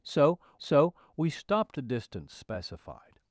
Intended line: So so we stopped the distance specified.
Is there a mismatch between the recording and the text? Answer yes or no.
no